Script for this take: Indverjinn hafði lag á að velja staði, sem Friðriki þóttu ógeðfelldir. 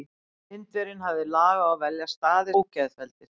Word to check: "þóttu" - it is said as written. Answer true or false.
false